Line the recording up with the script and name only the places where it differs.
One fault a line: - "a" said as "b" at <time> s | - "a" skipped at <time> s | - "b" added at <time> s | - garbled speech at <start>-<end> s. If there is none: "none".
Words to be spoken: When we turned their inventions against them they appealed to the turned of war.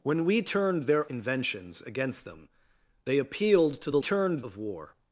none